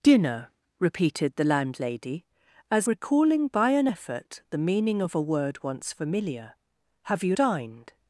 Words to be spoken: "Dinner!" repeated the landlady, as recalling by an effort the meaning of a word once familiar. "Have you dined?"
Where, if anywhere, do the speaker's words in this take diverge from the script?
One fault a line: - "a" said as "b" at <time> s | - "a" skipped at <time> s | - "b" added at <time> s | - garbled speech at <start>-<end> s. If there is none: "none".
none